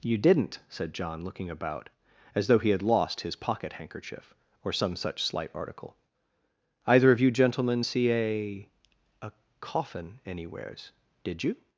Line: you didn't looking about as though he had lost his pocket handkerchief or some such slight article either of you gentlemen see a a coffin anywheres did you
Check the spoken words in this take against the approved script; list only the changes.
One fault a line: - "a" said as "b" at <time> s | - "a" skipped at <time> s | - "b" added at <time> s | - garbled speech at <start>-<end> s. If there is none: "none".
- "said john" added at 0.7 s